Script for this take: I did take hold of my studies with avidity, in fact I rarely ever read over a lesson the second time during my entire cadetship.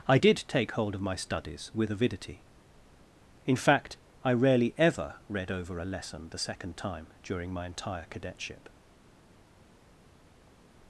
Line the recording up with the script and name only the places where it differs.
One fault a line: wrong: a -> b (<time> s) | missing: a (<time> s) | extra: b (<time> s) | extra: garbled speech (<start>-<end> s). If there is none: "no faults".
no faults